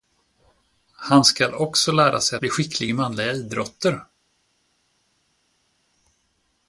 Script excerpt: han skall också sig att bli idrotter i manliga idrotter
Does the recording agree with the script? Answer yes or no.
no